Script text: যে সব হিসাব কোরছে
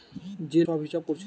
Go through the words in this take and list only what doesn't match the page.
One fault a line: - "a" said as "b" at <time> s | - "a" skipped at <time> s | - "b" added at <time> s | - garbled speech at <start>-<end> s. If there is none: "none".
none